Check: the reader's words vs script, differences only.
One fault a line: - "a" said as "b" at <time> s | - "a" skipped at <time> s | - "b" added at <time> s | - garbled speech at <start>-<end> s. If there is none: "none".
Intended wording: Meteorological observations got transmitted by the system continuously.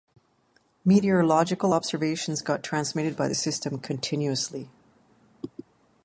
none